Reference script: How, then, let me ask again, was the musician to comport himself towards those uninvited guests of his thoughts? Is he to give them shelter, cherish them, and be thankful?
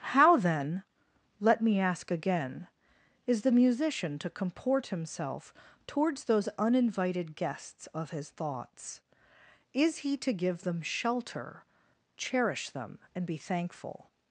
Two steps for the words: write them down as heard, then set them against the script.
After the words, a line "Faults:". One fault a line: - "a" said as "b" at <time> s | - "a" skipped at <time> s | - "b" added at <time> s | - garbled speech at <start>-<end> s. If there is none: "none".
How, then, let me ask again, is the musician to comport himself towards those uninvited guests of his thoughts? Is he to give them shelter, cherish them, and be thankful?
Faults:
- "was" said as "is" at 3.2 s